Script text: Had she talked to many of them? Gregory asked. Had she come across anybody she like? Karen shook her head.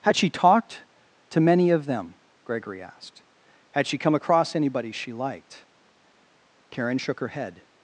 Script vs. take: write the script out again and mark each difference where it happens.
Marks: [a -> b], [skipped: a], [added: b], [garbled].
Had she talked to many of them? Gregory asked. Had she come across anybody she [like? -> liked] Karen shook her head.